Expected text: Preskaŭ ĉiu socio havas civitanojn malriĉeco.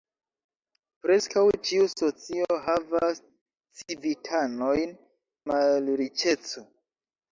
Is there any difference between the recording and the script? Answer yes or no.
no